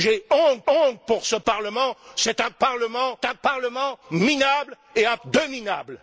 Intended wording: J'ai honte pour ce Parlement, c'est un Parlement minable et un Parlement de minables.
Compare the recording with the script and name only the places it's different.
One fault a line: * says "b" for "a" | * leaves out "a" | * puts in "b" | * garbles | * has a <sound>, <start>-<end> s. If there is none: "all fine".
* puts in "honte"
* puts in "un Parlement"
* leaves out "Parlement"